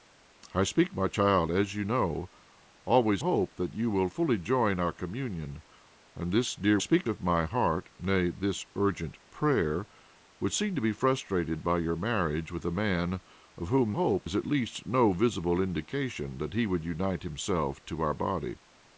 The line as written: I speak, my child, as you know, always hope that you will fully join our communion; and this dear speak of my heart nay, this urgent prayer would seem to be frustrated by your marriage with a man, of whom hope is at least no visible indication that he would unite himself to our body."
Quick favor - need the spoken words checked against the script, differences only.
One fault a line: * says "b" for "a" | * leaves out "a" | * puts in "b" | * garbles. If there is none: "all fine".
all fine